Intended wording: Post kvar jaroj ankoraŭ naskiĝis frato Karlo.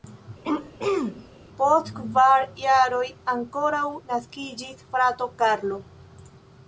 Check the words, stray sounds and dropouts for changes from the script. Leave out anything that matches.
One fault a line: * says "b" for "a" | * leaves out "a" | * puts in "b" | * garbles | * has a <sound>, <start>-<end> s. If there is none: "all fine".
* has a throat clearing, 0.4-1.3 s